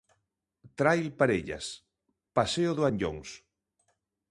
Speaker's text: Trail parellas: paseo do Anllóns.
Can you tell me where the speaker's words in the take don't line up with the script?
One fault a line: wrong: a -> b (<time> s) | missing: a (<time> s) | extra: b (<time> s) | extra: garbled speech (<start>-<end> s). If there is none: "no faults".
no faults